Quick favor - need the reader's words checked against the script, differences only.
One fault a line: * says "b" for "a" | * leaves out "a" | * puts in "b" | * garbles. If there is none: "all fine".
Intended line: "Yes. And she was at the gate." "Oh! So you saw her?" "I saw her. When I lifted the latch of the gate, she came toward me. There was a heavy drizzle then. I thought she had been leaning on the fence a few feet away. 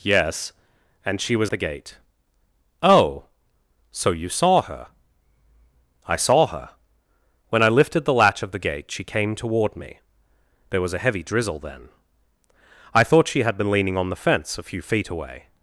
* leaves out "at"